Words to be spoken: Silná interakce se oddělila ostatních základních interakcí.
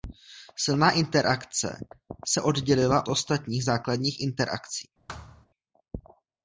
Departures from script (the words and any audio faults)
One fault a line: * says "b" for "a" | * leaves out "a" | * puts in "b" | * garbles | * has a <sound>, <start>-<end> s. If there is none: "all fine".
* has a thud, 5.1-5.5 s